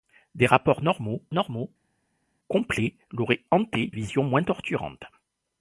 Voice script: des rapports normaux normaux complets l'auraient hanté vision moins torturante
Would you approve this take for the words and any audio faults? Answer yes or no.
yes